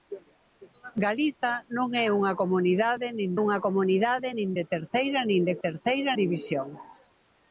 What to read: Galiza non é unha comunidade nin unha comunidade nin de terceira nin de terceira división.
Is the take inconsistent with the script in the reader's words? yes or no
no